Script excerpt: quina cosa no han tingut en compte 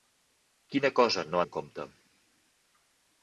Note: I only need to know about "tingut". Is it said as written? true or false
false